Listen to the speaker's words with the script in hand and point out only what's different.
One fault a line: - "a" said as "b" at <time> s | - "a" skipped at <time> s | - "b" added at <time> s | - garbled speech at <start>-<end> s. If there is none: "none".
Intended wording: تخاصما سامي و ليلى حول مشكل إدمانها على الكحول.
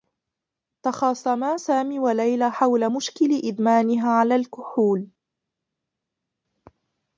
none